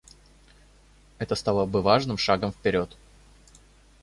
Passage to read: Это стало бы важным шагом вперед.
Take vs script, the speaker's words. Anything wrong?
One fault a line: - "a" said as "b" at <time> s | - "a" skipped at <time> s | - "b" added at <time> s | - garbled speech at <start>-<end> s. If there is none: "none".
none